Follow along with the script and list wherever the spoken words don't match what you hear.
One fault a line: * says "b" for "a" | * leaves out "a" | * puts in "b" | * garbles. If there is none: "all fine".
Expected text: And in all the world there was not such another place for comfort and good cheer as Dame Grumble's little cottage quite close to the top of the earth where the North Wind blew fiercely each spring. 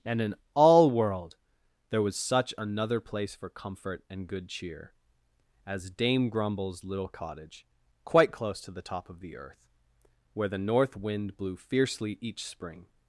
* leaves out "the"
* leaves out "not"